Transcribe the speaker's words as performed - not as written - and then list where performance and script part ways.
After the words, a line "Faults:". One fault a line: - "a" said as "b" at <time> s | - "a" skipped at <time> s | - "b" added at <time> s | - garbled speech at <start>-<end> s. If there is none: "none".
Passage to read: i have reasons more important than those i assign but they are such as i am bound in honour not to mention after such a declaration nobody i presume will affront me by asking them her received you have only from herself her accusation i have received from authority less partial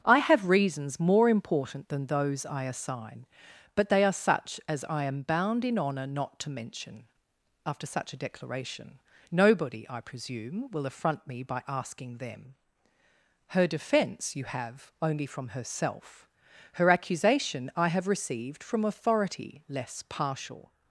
i have reasons more important than those i assign but they are such as i am bound in honour not to mention after such a declaration nobody i presume will affront me by asking them her defence you have only from herself her accusation i have received from authority less partial
Faults:
- "received" said as "defence" at 13.7 s